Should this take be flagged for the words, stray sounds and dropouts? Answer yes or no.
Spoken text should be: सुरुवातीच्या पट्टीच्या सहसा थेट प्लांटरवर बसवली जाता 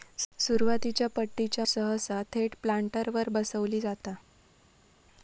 no